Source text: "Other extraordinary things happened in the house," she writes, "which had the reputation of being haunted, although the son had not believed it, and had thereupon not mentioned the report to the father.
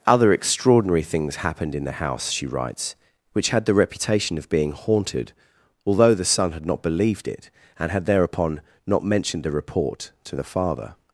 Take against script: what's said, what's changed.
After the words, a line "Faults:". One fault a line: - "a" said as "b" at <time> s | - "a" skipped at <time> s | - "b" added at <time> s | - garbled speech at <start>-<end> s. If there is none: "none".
"Other extraordinary things happened in the house," she writes, "which had the reputation of being haunted, although the son had not believed it, and had thereupon not mentioned the report to the father.
Faults:
none